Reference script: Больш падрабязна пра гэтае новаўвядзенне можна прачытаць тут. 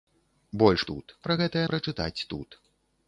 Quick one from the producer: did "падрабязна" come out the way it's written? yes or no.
no